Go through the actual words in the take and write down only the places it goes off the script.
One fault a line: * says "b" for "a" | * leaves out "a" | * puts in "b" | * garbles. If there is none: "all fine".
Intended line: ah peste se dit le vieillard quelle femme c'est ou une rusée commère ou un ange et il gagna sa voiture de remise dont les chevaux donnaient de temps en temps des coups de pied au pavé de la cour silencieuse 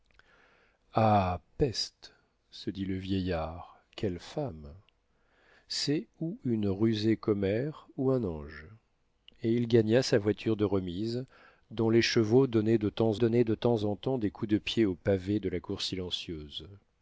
* puts in "donnaient de temps"